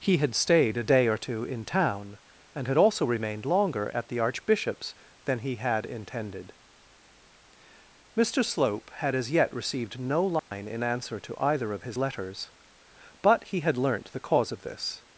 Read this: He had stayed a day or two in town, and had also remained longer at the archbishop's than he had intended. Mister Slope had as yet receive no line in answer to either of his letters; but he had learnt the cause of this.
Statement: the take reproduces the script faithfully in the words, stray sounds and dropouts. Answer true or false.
false